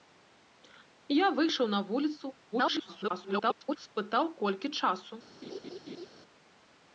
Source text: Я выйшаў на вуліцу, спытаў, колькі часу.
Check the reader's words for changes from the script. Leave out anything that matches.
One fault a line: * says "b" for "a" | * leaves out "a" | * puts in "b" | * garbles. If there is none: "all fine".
* garbles